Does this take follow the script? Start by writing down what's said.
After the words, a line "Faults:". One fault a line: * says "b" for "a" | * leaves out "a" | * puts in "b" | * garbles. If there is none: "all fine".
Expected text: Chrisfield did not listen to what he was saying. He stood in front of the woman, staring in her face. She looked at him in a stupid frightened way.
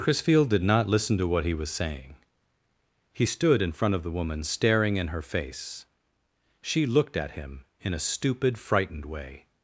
Chrisfield did not listen to what he was saying. He stood in front of the woman, staring in her face. She looked at him in a stupid frightened way.
Faults:
all fine